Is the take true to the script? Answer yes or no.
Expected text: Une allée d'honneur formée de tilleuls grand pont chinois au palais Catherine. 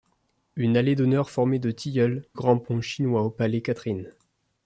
yes